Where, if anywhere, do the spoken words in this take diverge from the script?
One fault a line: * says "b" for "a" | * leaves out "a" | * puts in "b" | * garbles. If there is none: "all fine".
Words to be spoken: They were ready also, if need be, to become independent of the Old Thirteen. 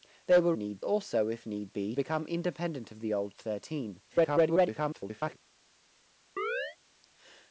* says "need" for "ready"
* leaves out "to"
* garbles